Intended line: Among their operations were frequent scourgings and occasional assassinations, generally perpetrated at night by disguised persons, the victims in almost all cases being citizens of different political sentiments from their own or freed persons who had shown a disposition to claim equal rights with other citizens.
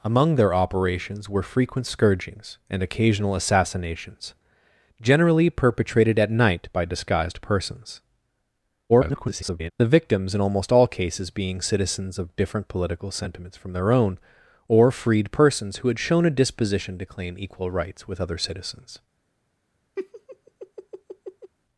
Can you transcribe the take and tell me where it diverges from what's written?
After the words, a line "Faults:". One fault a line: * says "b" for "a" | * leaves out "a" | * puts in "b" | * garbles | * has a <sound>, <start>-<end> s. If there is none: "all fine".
Among their operations were frequent scourgings and occasional assassinations, generally perpetrated at night by disguised persons, [garbled] the victims in almost all cases being citizens of different political sentiments from their own or freed persons who had shown a disposition to claim equal rights with other citizens.
Faults:
* garbles
* has a laugh, 20.0-21.5 s